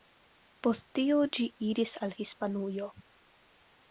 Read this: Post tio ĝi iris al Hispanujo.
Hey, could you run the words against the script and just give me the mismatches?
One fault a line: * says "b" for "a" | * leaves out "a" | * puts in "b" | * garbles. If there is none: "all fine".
all fine